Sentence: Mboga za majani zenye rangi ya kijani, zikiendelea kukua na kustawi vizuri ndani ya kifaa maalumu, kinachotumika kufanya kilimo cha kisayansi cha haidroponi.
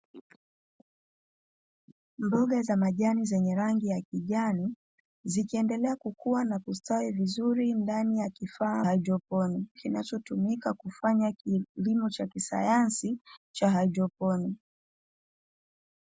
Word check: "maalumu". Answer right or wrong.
wrong